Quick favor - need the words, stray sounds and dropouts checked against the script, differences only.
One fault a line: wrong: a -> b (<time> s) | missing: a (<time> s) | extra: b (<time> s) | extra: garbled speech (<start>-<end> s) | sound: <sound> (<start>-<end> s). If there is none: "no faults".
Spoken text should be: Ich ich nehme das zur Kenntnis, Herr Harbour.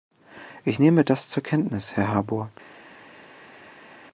missing: ich (0.8 s)